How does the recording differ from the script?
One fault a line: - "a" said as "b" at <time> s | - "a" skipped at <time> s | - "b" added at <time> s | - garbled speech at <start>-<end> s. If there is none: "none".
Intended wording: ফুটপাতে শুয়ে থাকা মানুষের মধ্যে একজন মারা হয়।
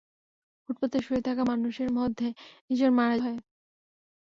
none